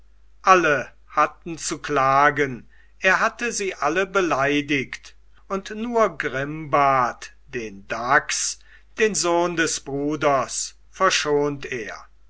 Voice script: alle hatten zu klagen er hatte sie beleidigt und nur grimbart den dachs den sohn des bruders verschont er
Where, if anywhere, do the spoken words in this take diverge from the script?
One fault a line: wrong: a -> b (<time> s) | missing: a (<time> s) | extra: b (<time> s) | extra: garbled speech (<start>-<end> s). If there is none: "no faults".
extra: alle (3.8 s)